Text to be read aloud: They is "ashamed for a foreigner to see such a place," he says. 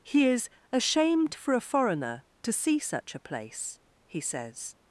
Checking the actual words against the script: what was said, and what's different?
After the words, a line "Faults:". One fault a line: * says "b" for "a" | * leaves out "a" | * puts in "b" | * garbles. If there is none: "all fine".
He is "ashamed for a foreigner to see such a place," he says.
Faults:
* says "He" for "They"